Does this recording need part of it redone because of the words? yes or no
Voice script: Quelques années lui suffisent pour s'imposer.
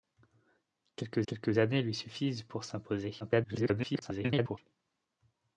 yes